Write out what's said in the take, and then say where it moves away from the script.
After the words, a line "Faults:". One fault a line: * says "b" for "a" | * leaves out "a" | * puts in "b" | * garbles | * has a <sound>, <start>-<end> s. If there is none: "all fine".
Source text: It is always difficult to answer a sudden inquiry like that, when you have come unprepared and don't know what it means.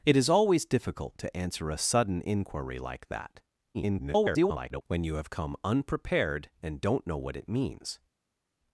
It is always difficult to answer a sudden inquiry like that, [garbled] when you have come unprepared and don't know what it means.
Faults:
* garbles